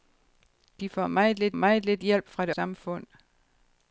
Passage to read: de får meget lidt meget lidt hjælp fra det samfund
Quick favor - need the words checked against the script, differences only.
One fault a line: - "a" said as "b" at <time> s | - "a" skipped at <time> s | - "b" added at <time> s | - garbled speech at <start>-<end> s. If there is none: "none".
none